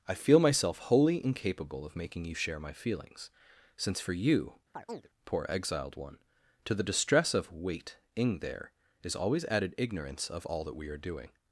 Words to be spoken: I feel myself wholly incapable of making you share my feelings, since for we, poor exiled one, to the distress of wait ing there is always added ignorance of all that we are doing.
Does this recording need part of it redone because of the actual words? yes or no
yes